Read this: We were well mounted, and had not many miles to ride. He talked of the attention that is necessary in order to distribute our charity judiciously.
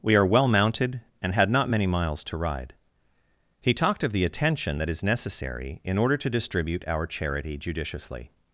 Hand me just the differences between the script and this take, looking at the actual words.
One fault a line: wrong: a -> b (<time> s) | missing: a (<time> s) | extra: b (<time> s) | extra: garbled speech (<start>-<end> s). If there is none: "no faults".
wrong: were -> are (0.1 s)